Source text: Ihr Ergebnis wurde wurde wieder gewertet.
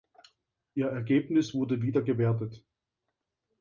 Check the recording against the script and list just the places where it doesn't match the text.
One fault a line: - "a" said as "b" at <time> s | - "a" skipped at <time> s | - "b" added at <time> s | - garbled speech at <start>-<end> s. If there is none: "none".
- "wurde" skipped at 1.8 s